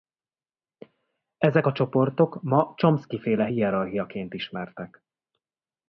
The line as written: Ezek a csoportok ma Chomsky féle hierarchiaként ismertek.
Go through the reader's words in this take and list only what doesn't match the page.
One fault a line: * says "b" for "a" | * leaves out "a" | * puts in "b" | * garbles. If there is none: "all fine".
all fine